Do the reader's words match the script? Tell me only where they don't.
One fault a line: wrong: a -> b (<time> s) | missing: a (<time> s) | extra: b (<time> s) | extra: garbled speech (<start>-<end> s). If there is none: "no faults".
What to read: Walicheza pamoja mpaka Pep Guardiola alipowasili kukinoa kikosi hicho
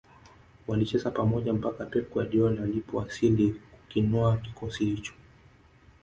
no faults